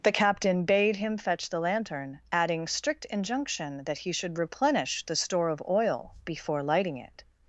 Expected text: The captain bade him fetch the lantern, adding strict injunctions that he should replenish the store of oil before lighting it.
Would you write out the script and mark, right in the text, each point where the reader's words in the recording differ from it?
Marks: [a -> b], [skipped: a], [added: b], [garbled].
The captain bade him fetch the lantern, adding strict [injunctions -> injunction] that he should replenish the store of oil before lighting it.